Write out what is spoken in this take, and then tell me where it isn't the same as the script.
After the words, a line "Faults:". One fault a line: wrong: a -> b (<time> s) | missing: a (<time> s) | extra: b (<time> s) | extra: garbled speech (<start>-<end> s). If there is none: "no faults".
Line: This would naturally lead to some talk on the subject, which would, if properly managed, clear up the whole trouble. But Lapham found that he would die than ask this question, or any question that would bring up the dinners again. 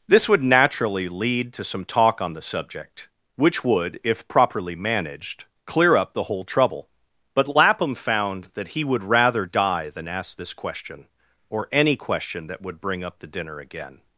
This would naturally lead to some talk on the subject, which would, if properly managed, clear up the whole trouble. But Lapham found that he would rather die than ask this question, or any question that would bring up the dinner again.
Faults:
extra: rather (9.0 s)
wrong: dinners -> dinner (13.3 s)